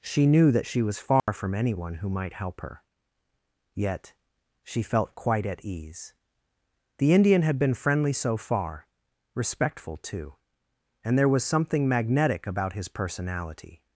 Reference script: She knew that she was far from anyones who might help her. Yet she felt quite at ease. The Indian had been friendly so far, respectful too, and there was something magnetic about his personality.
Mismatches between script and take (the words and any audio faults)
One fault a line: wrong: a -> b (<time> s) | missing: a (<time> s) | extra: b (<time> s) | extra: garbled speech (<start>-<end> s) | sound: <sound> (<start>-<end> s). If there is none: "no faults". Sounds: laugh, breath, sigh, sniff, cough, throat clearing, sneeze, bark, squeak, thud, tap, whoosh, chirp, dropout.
sound: dropout (1.2-1.3 s)
wrong: anyones -> anyone (1.5 s)